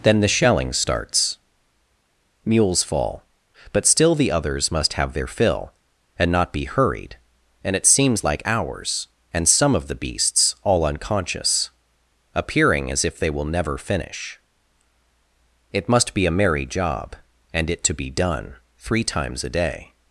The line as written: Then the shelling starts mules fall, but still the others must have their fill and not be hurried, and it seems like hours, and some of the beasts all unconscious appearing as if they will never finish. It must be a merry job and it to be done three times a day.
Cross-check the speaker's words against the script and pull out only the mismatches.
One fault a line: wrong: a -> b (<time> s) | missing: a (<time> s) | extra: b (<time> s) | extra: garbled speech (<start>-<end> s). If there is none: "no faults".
no faults